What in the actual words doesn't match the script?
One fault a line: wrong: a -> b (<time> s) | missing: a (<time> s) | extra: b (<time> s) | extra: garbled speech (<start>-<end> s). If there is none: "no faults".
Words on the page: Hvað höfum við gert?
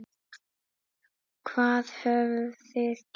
no faults